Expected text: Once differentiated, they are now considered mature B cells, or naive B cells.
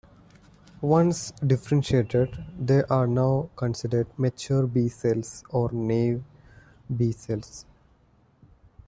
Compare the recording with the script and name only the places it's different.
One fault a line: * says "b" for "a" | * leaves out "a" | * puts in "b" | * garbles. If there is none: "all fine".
all fine